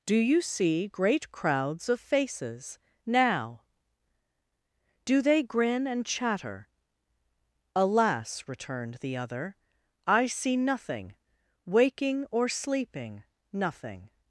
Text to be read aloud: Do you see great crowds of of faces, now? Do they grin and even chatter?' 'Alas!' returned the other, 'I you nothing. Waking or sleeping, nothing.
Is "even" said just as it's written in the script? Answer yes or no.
no